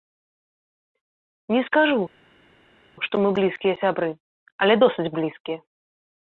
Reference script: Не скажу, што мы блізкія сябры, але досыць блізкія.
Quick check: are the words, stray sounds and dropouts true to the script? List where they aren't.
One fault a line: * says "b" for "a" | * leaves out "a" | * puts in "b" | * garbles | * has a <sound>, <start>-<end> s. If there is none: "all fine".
all fine